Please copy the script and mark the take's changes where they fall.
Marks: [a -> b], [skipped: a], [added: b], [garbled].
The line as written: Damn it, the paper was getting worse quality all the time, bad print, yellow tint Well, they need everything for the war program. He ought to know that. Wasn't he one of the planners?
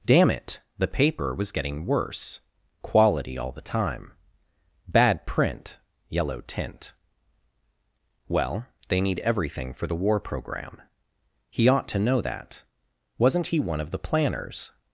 Damn it, the paper was getting worse quality all the time, bad print, yellow tint Well, they need everything for the war program. He ought to know that. Wasn't he one of the planners?